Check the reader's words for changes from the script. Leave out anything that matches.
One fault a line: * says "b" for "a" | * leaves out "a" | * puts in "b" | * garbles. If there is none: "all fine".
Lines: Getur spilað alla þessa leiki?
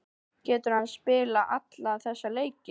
* puts in "hann"